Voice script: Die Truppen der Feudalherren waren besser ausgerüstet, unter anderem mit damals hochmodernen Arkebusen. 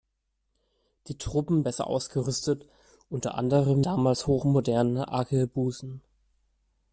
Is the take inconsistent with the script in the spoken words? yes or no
yes